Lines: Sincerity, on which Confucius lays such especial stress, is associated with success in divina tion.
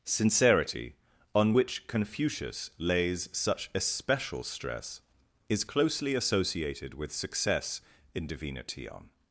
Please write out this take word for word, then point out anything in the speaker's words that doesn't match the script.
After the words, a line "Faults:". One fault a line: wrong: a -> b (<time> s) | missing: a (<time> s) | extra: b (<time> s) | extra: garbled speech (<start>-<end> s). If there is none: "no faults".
Sincerity, on which Confucius lays such especial stress, is closely associated with success in divina tion.
Faults:
extra: closely (5.6 s)